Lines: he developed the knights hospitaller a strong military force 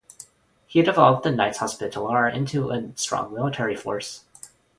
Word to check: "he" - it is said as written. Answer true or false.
true